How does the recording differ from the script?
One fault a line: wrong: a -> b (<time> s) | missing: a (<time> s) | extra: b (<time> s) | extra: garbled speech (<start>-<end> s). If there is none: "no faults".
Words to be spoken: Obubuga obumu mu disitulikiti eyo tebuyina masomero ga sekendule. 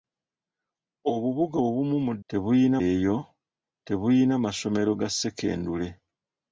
wrong: disitulikiti -> tebuyina (2.3 s)